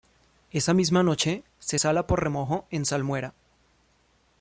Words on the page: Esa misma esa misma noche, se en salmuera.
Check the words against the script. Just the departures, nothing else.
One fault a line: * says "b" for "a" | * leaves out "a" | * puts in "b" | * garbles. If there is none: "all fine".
* says "noche se sala por remojo" for "esa misma noche se"